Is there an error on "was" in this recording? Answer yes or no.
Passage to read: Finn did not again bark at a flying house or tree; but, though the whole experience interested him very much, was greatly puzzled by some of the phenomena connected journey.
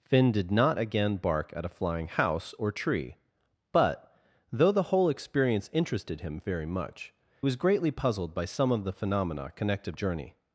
no